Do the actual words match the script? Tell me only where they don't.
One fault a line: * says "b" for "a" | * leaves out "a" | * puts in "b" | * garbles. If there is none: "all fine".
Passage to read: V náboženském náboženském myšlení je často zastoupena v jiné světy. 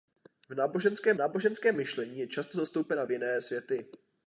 all fine